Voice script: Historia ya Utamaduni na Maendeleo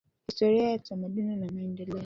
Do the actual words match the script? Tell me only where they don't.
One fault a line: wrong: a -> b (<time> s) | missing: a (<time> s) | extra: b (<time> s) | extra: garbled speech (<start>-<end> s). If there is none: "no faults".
no faults